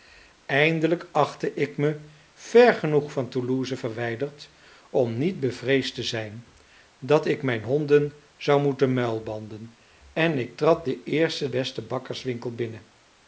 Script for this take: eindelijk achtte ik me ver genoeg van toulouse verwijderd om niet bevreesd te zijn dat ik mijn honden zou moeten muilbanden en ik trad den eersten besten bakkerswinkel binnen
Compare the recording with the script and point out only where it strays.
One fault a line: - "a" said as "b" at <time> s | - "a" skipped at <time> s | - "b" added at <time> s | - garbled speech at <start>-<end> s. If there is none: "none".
none